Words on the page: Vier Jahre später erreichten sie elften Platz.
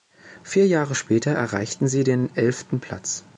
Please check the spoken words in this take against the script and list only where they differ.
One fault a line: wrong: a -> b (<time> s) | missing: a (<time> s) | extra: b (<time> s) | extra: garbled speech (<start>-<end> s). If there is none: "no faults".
extra: den (2.0 s)